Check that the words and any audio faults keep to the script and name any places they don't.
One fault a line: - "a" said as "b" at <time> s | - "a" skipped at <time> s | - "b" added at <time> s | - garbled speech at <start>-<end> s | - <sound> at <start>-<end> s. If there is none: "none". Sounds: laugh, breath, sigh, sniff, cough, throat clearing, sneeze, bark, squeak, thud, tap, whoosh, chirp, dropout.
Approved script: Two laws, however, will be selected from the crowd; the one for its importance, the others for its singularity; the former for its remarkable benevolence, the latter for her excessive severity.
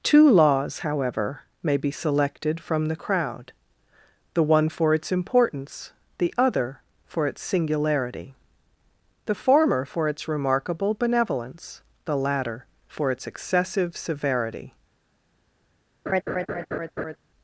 - "will" said as "may" at 1.6 s
- "others" said as "other" at 6.4 s
- "her" said as "its" at 13.1 s
- laugh at 16.1-17.2 s